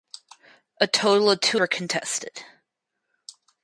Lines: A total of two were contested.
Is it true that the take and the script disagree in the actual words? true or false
false